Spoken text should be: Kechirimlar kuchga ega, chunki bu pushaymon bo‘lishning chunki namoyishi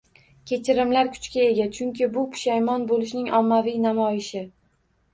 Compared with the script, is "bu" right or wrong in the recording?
right